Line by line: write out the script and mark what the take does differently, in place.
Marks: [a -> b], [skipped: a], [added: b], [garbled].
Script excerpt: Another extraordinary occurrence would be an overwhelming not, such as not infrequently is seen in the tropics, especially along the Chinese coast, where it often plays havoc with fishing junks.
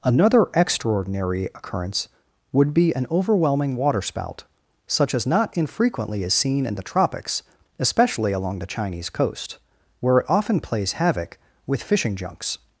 Another extraordinary occurrence would be an overwhelming [not, -> waterspout] such as not infrequently is seen in the tropics, especially along the Chinese coast, where it often plays havoc with fishing junks.